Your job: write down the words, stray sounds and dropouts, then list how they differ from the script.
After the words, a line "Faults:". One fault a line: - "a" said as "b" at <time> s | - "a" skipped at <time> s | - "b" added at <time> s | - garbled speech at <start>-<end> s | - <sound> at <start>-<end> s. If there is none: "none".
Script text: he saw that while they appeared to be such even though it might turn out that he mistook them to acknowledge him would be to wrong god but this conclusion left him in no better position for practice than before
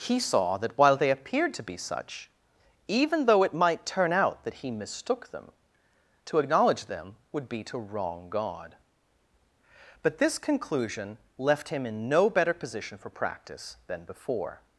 he saw that while they appeared to be such even though it might turn out that he mistook them to acknowledge them would be to wrong god but this conclusion left him in no better position for practice than before
Faults:
- "him" said as "them" at 6.9 s